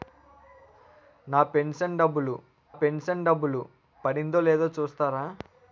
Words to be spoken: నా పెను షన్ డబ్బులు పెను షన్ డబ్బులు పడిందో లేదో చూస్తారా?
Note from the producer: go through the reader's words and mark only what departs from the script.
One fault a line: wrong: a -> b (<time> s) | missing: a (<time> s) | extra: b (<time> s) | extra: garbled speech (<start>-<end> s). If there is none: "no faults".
no faults